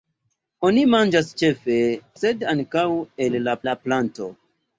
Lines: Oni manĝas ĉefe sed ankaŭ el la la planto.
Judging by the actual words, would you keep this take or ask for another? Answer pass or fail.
pass